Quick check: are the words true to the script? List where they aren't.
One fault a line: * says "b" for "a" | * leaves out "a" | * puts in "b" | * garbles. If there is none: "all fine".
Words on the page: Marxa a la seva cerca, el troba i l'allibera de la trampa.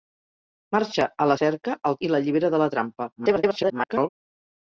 * leaves out "seva"
* leaves out "troba"
* garbles